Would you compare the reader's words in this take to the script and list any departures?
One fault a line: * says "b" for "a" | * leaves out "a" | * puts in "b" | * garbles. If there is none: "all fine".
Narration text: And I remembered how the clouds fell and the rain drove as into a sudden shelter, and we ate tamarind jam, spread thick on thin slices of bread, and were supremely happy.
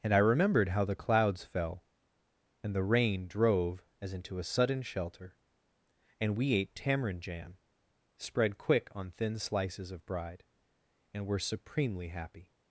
* says "quick" for "thick"
* says "bride" for "bread"